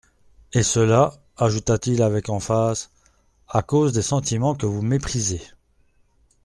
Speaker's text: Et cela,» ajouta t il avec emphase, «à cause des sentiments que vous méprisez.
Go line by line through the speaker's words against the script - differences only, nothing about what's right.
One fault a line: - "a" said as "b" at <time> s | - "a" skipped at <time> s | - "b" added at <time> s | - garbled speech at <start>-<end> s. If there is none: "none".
none